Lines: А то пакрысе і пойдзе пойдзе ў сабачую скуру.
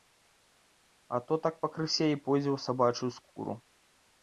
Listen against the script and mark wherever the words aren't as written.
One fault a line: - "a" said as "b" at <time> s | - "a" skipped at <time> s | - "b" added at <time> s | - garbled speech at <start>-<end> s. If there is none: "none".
- "так" added at 1.4 s
- "пойдзе" skipped at 2.5 s